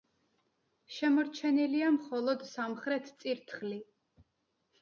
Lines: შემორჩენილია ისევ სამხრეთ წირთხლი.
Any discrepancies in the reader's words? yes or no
yes